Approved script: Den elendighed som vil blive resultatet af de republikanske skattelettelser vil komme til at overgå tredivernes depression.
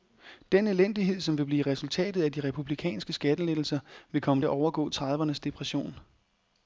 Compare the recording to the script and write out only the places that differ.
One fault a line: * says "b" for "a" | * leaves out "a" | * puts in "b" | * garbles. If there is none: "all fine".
* leaves out "til"